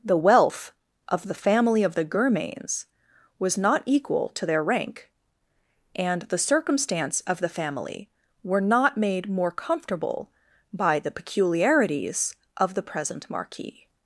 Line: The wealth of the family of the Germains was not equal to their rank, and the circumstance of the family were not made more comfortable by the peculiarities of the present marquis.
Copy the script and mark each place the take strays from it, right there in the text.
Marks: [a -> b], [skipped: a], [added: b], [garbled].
The wealth of the family of the Germains was not equal to their rank, and the circumstance of the family were not made more comfortable by the peculiarities of the present marquis.